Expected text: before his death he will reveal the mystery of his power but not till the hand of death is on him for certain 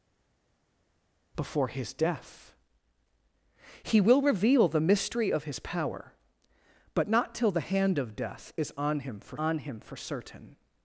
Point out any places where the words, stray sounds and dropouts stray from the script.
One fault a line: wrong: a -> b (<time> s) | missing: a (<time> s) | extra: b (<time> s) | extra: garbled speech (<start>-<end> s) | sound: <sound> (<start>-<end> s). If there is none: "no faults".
extra: on him for (9.4 s)